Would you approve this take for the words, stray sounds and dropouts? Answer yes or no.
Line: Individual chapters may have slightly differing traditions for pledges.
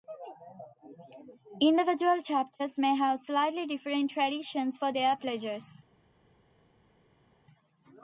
no